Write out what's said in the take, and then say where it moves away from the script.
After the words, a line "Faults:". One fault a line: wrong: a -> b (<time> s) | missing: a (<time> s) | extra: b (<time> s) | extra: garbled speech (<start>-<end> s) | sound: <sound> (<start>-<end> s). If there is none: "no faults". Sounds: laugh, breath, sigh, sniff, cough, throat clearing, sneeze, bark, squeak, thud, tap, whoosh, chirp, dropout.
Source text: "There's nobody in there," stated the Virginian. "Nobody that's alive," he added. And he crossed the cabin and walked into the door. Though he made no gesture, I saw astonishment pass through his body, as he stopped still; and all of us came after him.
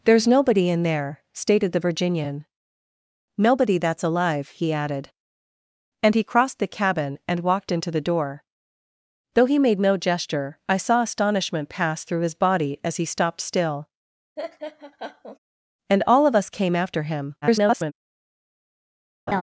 "There's nobody in there," stated the Virginian. "Nobody that's alive," he added. And he crossed the cabin and walked into the door. Though he made no gesture, I saw astonishment pass through his body, as he stopped still; and all of us came after him. [garbled]
Faults:
sound: laugh (14.4-15.4 s)
extra: garbled speech (17.4-17.9 s)
sound: laugh (19.3-19.4 s)